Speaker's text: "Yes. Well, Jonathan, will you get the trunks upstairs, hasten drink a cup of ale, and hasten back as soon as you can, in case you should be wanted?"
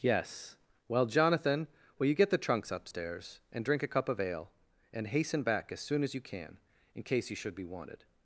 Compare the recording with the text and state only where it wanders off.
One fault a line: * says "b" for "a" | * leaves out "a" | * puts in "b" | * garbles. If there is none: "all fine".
* says "and" for "hasten"